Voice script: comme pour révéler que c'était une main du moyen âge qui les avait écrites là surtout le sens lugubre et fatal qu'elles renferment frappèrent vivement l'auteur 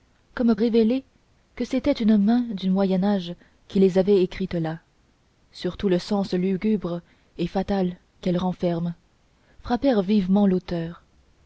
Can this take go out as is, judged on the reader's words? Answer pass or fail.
fail